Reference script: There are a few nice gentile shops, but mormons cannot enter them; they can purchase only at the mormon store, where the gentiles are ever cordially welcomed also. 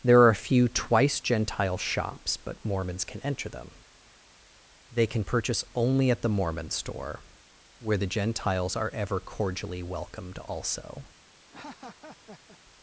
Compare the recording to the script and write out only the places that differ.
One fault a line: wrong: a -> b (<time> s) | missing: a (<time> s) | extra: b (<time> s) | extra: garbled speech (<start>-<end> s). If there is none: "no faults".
wrong: nice -> twice (0.7 s)
wrong: cannot -> can (3.0 s)